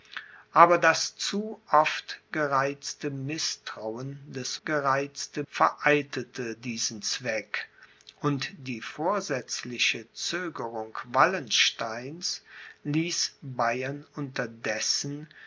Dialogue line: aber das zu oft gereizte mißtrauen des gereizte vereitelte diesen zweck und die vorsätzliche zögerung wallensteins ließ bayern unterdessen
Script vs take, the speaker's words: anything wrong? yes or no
no